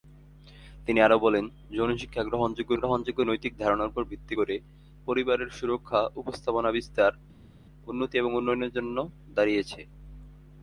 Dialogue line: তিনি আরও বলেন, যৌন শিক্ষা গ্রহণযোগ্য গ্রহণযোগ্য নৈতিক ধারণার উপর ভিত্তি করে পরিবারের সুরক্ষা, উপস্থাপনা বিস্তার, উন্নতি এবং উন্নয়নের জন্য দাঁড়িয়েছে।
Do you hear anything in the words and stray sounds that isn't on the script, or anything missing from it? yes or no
no